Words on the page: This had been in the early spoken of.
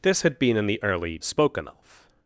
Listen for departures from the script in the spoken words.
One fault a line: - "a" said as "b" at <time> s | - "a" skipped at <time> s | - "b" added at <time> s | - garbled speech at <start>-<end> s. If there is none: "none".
none